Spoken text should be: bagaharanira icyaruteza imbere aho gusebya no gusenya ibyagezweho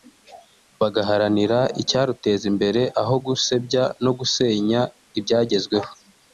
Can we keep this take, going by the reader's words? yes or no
yes